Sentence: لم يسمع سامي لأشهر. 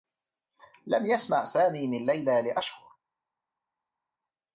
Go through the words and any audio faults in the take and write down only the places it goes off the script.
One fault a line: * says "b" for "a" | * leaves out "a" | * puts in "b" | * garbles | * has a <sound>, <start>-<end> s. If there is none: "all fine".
* puts in "من ليلى"